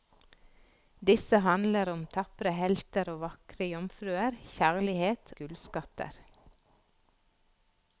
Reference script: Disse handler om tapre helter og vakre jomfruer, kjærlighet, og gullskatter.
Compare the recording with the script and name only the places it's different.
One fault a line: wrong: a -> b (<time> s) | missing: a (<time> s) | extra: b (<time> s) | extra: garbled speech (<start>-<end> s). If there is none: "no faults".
missing: og (5.3 s)